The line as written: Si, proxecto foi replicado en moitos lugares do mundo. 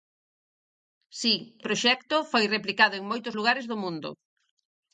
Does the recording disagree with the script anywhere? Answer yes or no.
no